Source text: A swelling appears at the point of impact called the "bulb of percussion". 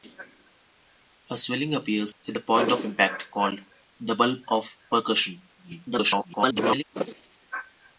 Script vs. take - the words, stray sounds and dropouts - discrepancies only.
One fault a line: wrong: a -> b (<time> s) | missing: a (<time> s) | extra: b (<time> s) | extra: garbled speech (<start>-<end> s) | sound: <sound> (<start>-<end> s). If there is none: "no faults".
sound: dropout (2.1-2.2 s)
extra: garbled speech (5.6-6.8 s)